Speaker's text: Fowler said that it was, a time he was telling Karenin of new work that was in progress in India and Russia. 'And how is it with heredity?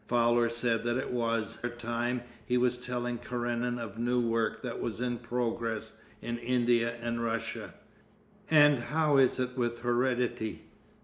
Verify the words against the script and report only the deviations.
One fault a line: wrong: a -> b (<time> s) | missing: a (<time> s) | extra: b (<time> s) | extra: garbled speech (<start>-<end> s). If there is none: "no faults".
no faults